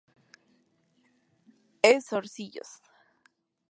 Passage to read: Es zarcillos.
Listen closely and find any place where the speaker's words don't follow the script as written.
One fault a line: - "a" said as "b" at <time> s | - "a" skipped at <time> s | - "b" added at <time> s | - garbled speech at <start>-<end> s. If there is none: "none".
none